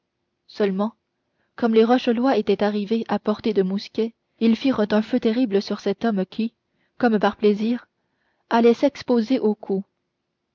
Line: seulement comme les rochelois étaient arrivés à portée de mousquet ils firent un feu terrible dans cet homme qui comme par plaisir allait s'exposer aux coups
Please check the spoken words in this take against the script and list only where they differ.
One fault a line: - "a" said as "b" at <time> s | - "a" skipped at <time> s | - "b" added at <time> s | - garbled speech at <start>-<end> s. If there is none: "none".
- "dans" said as "sur" at 5.6 s